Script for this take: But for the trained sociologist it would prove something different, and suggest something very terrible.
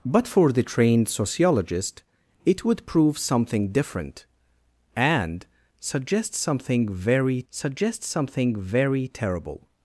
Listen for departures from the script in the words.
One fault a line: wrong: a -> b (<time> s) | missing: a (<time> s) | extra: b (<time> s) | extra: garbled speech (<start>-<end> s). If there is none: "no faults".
extra: suggest something very (7.5 s)